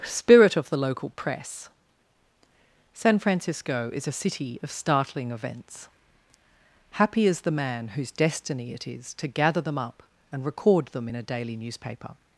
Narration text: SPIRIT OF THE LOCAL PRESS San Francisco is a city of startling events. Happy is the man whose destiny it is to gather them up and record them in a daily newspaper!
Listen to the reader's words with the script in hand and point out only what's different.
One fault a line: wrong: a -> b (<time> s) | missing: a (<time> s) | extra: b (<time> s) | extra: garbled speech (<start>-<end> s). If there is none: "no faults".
no faults